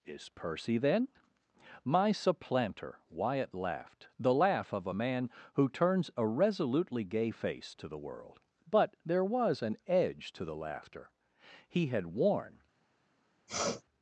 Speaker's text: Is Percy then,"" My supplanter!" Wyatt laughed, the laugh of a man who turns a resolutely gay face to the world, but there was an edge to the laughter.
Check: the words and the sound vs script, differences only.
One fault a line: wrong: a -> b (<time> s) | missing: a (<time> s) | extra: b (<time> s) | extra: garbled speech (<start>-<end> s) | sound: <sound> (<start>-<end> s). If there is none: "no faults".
extra: He had worn (11.7 s)
sound: sniff (13.5-13.8 s)